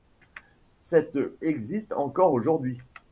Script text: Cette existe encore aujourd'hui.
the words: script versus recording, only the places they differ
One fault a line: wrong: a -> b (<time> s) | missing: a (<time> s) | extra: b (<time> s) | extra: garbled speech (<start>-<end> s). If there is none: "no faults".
no faults